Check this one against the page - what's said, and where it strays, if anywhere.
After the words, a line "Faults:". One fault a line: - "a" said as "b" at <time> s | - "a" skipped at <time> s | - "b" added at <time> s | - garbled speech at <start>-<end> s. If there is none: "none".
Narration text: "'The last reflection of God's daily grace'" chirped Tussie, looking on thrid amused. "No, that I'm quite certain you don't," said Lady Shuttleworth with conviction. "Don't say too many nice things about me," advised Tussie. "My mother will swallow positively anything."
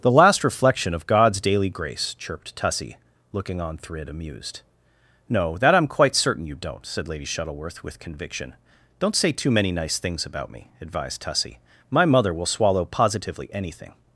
"'The last reflection of God's daily grace'" chirped Tussie, looking on thrid amused. "No, that I'm quite certain you don't," said Lady Shuttleworth with conviction. "Don't say too many nice things about me," advised Tussie. "My mother will swallow positively anything."
Faults:
none